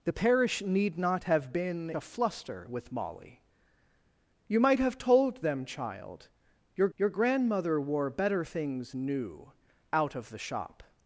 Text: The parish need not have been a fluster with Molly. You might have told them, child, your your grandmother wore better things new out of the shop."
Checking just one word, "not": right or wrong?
right